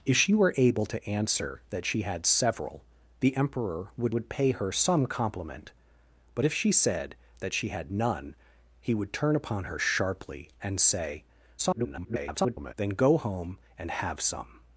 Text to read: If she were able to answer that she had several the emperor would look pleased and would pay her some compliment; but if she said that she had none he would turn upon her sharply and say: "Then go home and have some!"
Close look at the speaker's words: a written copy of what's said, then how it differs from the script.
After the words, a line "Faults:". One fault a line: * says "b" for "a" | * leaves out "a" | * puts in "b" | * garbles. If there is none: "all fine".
If she were able to answer that she had several the emperor would would pay her some compliment; but if she said that she had none he would turn upon her sharply and say: [garbled] "Then go home and have some!"
Faults:
* leaves out "look pleased and"
* garbles